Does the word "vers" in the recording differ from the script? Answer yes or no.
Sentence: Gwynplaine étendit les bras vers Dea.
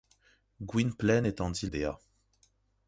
yes